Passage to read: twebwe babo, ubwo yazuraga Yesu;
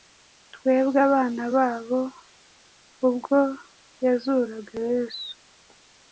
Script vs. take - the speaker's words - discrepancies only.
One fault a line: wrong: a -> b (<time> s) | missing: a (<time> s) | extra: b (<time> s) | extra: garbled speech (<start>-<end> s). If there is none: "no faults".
extra: abana (1.1 s)